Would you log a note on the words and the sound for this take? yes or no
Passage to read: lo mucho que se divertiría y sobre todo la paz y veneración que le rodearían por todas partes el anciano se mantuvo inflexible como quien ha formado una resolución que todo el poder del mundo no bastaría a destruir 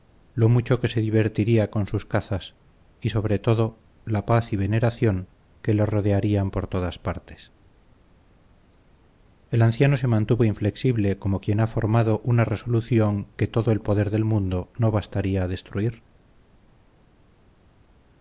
yes